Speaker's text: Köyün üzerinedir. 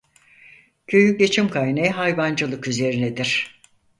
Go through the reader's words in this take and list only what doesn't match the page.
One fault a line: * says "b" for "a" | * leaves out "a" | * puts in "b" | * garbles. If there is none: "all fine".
* puts in "geçim kaynağı hayvancılık"